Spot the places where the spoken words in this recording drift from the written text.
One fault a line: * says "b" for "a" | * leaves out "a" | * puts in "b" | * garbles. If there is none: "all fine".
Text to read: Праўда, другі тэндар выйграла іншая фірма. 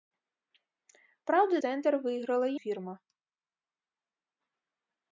* leaves out "другі"
* leaves out "іншая"